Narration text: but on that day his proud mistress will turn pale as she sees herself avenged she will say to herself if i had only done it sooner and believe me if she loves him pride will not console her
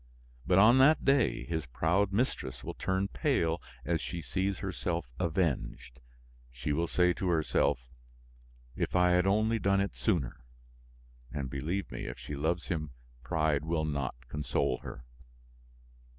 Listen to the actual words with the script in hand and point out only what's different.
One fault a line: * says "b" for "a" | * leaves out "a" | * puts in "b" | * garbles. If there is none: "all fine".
all fine